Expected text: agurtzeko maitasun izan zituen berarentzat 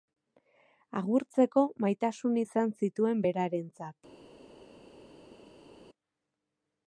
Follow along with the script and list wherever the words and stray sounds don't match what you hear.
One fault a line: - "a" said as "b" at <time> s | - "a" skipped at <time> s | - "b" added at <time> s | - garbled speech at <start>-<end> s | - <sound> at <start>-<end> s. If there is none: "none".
none